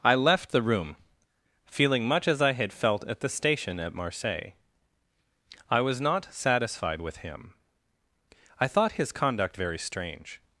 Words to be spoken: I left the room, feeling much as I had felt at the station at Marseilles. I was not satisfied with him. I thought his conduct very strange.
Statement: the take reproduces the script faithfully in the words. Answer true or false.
true